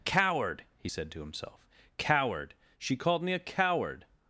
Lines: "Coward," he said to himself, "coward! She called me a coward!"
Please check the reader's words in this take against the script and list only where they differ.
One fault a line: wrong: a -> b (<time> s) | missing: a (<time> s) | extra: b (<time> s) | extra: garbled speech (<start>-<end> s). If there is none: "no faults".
no faults